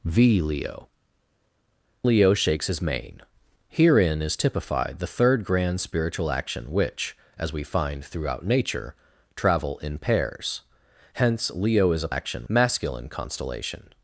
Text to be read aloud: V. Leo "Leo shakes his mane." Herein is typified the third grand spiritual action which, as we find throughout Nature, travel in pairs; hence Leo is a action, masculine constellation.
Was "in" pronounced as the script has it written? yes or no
yes